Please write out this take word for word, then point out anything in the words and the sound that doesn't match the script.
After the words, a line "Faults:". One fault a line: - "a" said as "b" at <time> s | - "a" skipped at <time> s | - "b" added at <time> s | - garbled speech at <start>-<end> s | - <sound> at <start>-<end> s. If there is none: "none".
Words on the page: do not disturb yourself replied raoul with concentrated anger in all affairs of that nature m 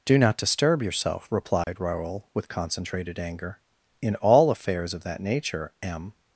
do not disturb yourself replied raoul with concentrated anger in all affairs of that nature m
Faults:
- dropout at 1.6-1.7 s